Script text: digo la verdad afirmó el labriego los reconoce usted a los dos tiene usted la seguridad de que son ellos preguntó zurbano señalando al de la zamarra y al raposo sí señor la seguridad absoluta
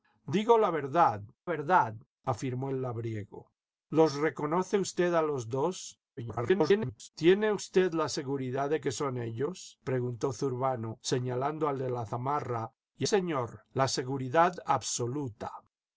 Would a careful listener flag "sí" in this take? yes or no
yes